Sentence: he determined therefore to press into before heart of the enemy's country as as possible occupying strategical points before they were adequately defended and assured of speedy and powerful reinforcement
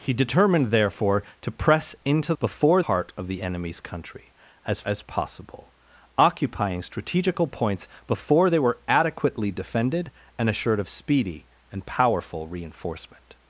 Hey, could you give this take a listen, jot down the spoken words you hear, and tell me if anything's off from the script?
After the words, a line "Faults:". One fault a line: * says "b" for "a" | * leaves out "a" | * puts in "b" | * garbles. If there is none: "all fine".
he determined therefore to press into before heart of the enemy's country as as possible occupying strategical points before they were adequately defended and assured of speedy and powerful reinforcement
Faults:
all fine